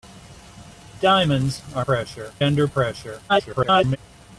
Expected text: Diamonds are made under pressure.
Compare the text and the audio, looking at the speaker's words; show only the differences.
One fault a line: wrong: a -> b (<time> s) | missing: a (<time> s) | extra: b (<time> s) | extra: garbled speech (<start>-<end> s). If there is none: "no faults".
wrong: made -> pressure (1.8 s)
extra: garbled speech (3.3-4.0 s)